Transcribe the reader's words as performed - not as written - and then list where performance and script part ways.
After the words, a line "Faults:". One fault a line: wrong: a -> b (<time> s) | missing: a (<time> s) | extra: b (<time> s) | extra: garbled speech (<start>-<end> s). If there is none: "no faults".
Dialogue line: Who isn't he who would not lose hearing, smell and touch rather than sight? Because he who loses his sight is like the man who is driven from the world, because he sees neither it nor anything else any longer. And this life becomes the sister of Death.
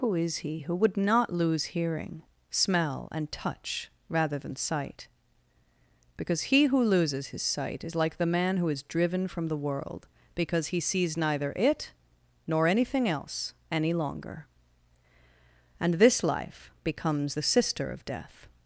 Who is he who would not lose hearing, smell and touch rather than sight? Because he who loses his sight is like the man who is driven from the world, because he sees neither it nor anything else any longer. And this life becomes the sister of Death.
Faults:
wrong: isn't -> is (0.1 s)